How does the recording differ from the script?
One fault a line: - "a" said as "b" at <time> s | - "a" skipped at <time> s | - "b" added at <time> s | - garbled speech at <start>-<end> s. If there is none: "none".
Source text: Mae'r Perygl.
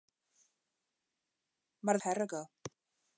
none